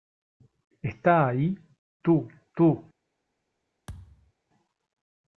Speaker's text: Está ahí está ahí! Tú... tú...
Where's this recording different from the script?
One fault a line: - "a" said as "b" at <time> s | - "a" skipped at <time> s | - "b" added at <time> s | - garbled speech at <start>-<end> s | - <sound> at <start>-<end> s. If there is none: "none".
- "está ahí" skipped at 1.6 s
- thud at 3.9-4.3 s